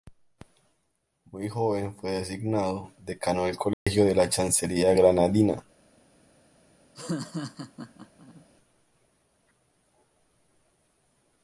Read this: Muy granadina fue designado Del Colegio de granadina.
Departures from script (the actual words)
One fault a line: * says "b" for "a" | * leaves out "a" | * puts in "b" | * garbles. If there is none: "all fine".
* says "joven" for "granadina"
* puts in "Decano"
* puts in "la Chancillería"